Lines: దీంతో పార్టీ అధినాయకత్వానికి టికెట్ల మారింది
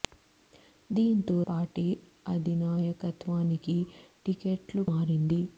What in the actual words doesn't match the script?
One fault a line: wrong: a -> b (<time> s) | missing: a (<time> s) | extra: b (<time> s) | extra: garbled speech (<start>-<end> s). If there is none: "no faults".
no faults